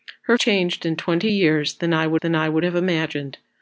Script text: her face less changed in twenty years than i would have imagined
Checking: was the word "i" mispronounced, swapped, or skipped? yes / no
no